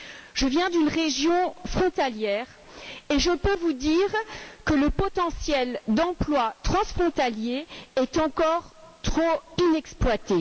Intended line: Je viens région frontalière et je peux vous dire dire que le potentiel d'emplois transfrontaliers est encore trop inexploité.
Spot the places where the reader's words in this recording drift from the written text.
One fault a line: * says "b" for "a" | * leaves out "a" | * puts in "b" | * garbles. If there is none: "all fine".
* puts in "d'une"
* leaves out "dire"